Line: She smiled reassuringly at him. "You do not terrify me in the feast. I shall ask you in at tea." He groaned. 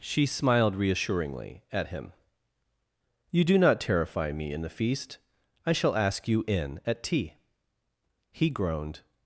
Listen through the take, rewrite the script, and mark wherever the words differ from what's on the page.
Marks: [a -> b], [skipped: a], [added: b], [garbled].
She smiled reassuringly at him. "You do not terrify me in the feast. I shall ask you in at tea." He groaned.